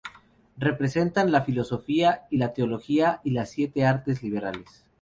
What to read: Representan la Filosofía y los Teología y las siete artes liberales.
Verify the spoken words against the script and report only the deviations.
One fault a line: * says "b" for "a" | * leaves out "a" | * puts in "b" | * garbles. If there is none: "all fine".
* says "la" for "los"